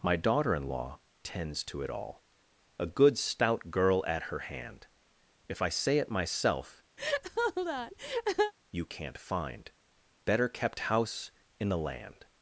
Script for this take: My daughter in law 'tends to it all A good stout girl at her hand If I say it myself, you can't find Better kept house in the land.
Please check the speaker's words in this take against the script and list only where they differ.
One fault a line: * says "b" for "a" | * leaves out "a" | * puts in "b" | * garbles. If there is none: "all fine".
all fine